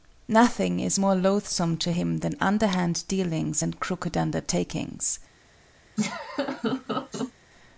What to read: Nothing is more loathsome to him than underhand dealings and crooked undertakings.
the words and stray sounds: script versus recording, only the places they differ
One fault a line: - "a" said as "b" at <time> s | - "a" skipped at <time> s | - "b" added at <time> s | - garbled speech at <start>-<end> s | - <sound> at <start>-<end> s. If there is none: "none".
- laugh at 6.0-7.3 s